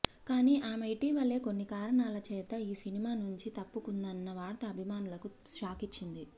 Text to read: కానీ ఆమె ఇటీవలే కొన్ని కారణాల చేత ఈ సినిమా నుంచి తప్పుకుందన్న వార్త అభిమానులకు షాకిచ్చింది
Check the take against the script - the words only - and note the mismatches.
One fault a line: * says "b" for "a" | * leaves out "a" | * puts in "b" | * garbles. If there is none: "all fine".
all fine